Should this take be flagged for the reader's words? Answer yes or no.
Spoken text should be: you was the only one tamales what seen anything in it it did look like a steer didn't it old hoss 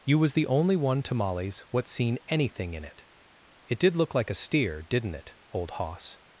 no